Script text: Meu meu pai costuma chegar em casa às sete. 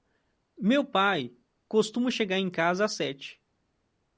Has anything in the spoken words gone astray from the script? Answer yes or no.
yes